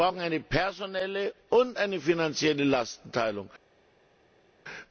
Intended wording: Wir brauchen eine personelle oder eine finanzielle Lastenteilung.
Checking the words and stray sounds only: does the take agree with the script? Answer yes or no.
no